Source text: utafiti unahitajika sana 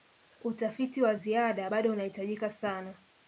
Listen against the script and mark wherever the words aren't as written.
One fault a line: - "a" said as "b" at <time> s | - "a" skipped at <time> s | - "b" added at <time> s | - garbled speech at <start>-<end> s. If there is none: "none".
- "wa ziada bado" added at 1.0 s